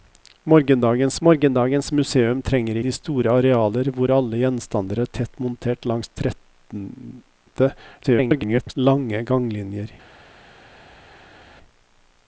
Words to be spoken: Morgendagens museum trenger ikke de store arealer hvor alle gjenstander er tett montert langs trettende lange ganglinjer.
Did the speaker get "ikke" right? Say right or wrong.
wrong